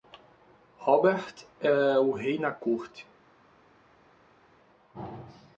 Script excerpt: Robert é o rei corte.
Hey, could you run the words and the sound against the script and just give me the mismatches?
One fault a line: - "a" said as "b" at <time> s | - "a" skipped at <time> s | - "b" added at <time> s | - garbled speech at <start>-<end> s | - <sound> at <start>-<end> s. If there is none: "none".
- "na" added at 2.4 s